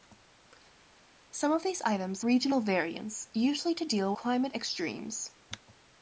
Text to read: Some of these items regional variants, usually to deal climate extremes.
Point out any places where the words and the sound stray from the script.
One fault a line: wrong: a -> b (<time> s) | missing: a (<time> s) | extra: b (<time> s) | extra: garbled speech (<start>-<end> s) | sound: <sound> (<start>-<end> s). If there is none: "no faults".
no faults